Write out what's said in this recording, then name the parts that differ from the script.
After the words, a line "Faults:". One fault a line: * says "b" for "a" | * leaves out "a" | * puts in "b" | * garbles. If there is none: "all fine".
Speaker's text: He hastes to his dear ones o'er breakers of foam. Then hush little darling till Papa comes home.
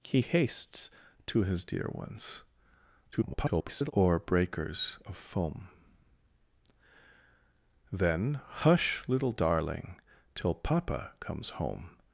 He hastes to his dear ones [garbled] o'er breakers of foam. Then hush little darling till Papa comes home.
Faults:
* garbles